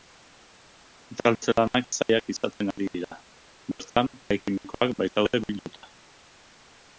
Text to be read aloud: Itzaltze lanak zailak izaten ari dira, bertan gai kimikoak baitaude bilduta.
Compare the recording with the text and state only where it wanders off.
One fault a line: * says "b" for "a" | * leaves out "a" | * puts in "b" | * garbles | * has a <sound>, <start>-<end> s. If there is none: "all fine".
all fine